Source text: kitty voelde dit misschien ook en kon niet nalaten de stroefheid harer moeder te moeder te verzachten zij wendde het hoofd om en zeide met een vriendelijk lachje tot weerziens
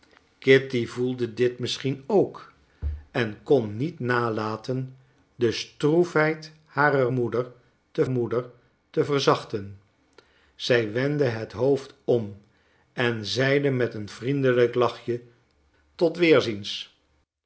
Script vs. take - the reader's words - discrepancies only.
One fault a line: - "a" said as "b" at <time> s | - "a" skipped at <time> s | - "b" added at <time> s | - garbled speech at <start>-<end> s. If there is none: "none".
none